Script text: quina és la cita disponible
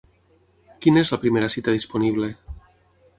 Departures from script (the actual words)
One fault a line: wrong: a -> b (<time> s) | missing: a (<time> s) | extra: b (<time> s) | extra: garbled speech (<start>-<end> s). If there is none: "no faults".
extra: primera (1.3 s)